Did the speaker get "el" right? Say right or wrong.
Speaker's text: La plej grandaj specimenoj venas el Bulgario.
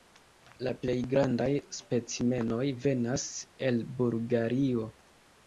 right